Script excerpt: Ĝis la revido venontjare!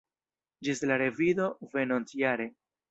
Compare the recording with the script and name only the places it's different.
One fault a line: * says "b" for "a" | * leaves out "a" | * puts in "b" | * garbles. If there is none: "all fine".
all fine